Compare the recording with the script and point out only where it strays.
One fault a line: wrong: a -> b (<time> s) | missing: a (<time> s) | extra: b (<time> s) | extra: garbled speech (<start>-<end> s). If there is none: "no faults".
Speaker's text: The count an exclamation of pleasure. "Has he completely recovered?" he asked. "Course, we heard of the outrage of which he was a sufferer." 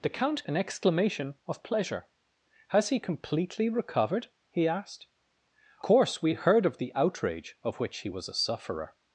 no faults